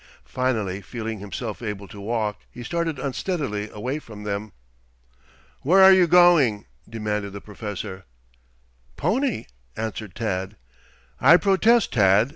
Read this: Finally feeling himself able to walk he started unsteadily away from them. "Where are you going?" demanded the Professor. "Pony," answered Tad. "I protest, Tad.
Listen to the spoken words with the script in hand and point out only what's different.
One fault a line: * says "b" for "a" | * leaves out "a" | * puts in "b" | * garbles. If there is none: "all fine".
all fine